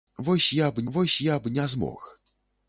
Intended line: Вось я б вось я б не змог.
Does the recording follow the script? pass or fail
pass